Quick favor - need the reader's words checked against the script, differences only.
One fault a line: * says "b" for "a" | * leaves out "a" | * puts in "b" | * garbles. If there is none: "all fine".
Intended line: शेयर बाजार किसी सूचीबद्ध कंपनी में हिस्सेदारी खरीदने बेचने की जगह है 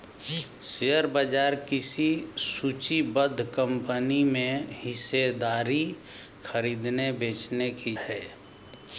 * leaves out "जगह"